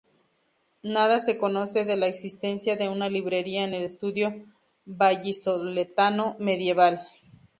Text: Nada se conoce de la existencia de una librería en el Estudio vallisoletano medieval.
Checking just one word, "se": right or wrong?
right